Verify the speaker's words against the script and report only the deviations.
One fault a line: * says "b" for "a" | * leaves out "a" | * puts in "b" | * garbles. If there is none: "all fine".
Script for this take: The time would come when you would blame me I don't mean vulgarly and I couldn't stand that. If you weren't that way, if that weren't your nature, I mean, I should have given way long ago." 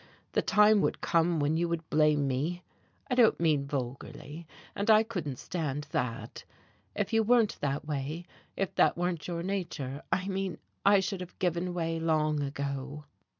all fine